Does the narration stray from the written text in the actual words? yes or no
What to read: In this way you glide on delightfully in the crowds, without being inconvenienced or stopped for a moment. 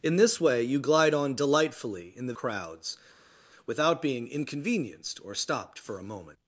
no